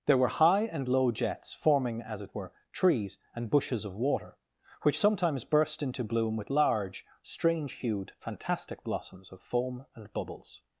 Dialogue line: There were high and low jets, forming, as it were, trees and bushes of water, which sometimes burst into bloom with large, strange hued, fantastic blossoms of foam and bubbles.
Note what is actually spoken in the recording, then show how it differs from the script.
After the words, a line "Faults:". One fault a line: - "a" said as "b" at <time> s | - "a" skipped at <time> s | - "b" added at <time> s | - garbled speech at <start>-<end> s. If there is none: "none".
There were high and low jets, forming, as it were, trees and bushes of water, which sometimes burst into bloom with large, strange hued, fantastic blossoms of foam and bubbles.
Faults:
none